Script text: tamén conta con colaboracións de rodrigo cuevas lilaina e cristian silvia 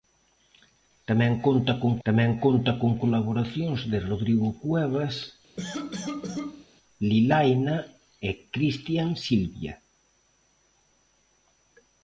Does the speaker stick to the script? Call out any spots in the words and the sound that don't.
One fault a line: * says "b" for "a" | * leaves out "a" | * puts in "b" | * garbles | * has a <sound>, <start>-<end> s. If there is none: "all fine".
* puts in "tamén conta con"
* has a cough, 5.6-6.7 s